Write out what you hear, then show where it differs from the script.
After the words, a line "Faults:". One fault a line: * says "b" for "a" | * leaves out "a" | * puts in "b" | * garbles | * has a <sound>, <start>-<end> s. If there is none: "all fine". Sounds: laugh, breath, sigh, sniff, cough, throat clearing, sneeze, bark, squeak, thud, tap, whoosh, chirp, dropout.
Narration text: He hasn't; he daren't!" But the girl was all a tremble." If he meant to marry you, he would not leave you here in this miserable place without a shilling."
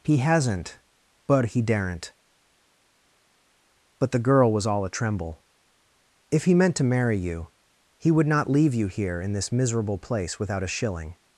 He hasn't; but he daren't!" But the girl was all a tremble." If he meant to marry you, he would not leave you here in this miserable place without a shilling."
Faults:
* puts in "but"